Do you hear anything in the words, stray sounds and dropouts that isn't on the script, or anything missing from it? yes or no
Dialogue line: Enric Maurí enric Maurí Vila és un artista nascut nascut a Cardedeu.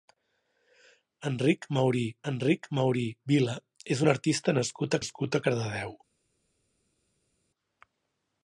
no